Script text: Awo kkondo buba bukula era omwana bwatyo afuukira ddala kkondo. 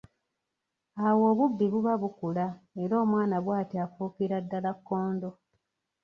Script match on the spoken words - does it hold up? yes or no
no